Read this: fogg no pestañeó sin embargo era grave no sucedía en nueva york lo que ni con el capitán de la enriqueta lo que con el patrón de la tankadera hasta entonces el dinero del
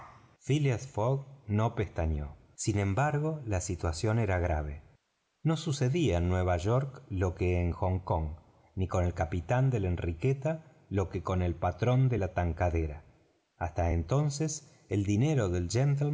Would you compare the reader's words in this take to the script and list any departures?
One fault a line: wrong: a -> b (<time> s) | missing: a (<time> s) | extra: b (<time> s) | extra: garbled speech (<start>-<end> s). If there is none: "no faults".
extra: la situación (3.5 s)
extra: en hong kong (7.6 s)